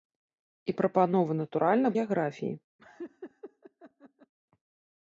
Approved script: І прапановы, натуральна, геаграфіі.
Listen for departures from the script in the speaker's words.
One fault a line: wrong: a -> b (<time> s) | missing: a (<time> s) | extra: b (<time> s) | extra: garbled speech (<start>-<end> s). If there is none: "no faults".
no faults